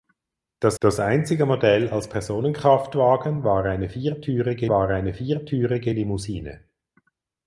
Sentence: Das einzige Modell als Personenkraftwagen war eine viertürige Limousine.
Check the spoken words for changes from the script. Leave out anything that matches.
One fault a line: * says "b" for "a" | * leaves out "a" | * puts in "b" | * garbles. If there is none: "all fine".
* puts in "das"
* puts in "war eine viertürige"